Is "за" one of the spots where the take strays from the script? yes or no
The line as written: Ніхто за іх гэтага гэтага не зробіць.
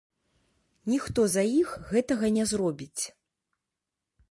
no